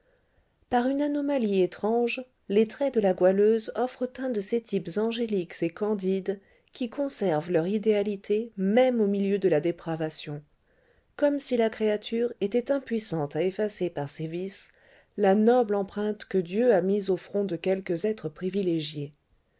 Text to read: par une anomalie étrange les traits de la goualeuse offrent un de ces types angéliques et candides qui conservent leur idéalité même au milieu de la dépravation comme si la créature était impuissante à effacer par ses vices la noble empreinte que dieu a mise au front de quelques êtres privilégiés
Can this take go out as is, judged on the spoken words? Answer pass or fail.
pass